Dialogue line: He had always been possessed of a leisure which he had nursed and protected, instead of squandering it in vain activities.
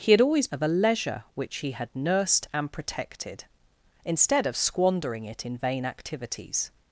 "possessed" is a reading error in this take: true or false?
true